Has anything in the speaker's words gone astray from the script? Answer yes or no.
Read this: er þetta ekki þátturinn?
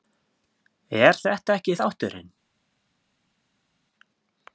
no